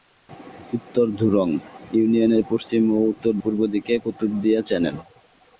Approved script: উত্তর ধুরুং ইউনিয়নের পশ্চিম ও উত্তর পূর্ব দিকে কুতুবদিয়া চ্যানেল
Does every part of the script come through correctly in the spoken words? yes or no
yes